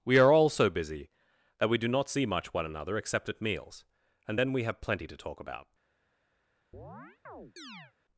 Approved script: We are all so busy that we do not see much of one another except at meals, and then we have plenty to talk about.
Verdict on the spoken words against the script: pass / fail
fail